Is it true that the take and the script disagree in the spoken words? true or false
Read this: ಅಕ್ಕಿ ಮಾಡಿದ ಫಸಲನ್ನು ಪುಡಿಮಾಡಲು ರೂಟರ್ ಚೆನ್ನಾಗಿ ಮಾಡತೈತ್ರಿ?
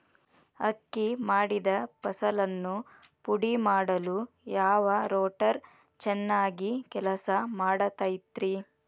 true